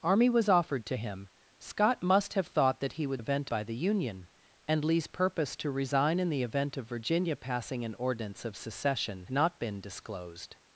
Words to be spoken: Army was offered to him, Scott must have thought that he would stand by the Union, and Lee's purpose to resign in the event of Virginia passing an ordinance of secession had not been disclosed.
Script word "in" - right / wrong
right